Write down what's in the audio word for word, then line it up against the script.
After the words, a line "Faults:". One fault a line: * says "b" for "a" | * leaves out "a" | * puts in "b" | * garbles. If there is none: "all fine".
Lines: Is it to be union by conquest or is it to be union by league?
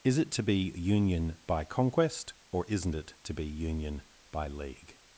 Is it to be union by conquest or isn't it to be union by league?
Faults:
* says "isn't" for "is"